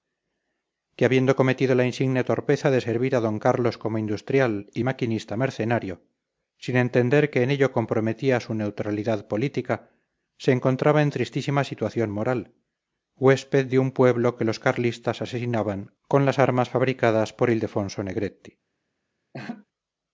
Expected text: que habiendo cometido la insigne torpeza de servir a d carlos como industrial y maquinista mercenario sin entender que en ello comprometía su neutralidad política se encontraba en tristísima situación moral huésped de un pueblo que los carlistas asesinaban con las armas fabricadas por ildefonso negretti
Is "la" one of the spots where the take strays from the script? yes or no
no